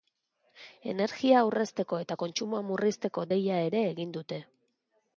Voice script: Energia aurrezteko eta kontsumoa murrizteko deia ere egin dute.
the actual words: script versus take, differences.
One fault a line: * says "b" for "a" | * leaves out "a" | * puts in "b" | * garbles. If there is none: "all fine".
all fine